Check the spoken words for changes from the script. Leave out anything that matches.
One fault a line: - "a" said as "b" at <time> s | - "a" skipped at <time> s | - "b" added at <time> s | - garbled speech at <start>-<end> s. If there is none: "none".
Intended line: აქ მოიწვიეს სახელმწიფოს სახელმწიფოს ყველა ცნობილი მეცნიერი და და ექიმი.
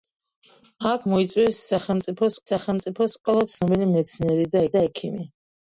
none